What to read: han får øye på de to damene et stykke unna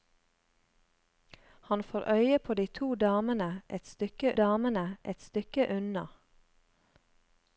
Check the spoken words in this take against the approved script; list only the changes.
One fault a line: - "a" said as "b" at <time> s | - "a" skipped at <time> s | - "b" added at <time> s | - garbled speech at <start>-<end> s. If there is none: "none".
- "damene et stykke" added at 4.3 s